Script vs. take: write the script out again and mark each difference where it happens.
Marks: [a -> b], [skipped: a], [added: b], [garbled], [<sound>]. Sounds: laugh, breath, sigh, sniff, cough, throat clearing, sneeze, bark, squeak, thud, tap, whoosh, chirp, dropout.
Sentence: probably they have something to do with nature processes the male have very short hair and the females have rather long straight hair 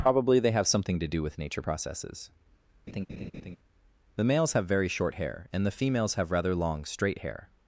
probably they have something to do with nature processes [laugh] the [male -> males] have very short hair and the females have rather long straight hair